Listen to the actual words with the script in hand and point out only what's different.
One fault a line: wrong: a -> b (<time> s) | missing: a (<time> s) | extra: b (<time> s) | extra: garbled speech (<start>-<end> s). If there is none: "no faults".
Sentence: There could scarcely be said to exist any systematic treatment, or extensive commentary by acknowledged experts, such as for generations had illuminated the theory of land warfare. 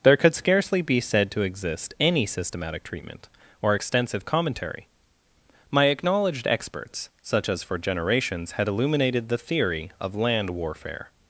wrong: by -> my (5.7 s)